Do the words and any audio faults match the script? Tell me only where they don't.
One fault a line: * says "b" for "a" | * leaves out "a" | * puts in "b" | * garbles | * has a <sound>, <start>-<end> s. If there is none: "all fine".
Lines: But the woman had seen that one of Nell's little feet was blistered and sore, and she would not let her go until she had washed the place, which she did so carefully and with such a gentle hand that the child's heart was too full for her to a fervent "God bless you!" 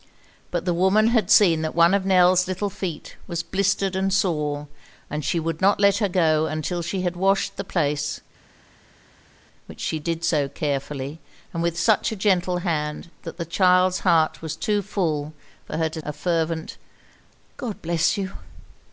all fine